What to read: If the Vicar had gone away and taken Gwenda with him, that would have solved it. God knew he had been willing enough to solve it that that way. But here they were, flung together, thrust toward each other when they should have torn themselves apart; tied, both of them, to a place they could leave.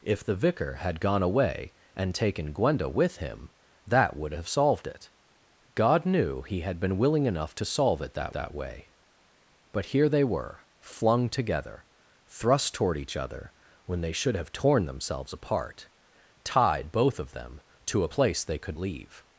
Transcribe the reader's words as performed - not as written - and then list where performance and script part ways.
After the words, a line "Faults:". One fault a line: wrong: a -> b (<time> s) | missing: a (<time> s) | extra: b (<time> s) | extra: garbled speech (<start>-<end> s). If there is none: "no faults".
If the Vicar had gone away and taken Gwenda with him, that would have solved it. God knew he had been willing enough to solve it that that way. But here they were, flung together, thrust toward each other when they should have torn themselves apart; tied, both of them, to a place they could leave.
Faults:
no faults